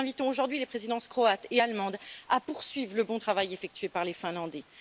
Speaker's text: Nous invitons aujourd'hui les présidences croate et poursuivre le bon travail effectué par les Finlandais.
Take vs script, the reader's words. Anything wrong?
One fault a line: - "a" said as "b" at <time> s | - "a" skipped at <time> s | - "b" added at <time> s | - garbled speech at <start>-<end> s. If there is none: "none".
- "allemande à" added at 1.6 s